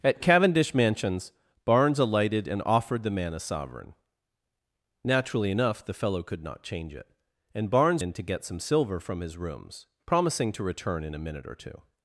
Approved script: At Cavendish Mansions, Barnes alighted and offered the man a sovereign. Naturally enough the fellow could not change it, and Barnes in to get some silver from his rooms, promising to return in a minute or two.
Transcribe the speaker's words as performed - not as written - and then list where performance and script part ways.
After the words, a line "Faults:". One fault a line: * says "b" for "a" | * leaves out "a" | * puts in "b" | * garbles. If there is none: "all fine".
At Cavendish Mansions, Barnes alighted and offered the man a sovereign. Naturally enough the fellow could not change it, and Barnes in to get some silver from his rooms, promising to return in a minute or two.
Faults:
all fine